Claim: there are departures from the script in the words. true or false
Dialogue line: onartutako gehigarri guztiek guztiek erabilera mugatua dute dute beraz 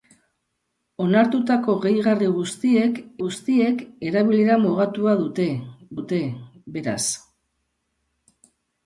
false